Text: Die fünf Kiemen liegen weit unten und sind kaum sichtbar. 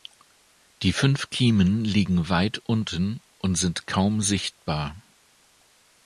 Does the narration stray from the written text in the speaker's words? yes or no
no